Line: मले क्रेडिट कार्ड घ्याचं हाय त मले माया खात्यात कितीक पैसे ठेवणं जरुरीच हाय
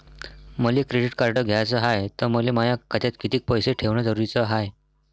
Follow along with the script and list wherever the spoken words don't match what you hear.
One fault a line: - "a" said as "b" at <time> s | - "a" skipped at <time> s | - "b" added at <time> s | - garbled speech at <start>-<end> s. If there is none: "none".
none